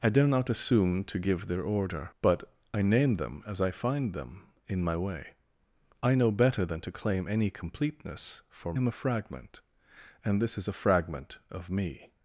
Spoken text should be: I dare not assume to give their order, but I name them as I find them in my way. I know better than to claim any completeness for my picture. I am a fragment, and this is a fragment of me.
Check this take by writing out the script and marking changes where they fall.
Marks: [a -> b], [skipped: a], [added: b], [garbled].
I dare not assume to give their order, but I name them as I find them in my way. I know better than to claim any completeness for [skipped: my picture. I] am a fragment, and this is a fragment of me.